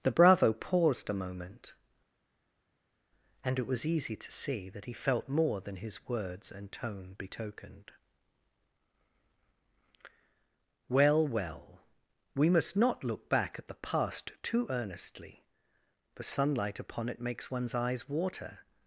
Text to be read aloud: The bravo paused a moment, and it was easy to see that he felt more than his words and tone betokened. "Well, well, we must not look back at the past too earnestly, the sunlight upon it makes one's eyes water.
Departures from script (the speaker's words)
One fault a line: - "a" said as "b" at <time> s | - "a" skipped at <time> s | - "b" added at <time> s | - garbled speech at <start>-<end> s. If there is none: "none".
none